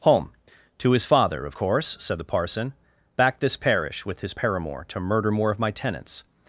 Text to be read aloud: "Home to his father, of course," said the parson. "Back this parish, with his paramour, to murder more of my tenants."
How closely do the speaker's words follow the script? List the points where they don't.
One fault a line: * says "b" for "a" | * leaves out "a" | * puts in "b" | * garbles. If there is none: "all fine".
all fine